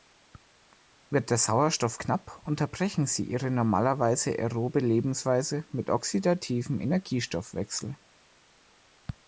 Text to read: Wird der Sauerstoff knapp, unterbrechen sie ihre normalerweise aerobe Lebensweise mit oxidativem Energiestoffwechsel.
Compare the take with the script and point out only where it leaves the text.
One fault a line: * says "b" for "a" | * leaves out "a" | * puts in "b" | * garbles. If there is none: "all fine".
all fine